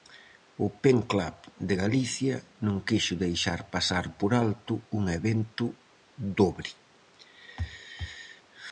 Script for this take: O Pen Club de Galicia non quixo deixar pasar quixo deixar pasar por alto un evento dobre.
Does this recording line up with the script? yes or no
no